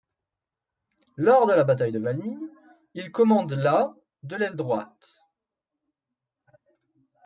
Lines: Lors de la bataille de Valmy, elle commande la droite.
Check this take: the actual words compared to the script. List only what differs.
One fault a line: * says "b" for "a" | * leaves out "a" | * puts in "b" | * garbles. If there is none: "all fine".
* says "il" for "elle"
* puts in "de l'aile"